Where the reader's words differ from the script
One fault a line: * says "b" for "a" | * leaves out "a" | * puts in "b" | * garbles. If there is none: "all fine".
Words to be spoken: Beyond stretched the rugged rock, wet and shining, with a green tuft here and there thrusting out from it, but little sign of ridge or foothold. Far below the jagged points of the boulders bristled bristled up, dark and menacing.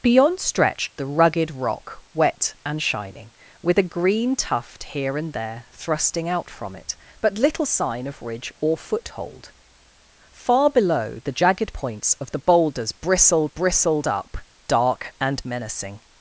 all fine